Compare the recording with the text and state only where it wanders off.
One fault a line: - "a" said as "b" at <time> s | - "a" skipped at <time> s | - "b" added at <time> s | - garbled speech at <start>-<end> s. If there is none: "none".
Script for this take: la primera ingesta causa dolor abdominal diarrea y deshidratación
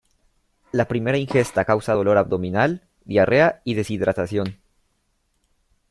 none